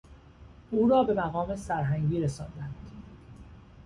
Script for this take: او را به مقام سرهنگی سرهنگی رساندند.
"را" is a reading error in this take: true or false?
false